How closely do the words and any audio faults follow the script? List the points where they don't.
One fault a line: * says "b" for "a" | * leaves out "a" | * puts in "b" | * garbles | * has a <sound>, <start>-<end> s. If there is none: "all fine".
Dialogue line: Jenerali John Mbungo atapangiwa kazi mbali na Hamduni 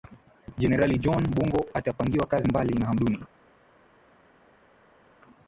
all fine